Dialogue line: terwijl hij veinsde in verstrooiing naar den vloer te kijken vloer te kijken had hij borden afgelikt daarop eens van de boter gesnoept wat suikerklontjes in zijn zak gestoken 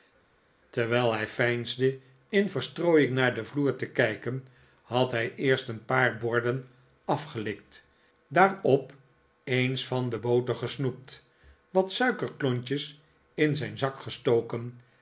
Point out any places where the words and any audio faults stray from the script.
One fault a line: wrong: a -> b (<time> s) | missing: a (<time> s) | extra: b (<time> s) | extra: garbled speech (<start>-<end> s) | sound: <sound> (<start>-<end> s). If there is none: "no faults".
wrong: vloer te kijken had hij -> had hij eerst een paar (4.8 s)